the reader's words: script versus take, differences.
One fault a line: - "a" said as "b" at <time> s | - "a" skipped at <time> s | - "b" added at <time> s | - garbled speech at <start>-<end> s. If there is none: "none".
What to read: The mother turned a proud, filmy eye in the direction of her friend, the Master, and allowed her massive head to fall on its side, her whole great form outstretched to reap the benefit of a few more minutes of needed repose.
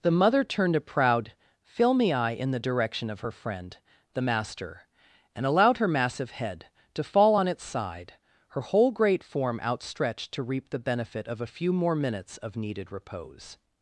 none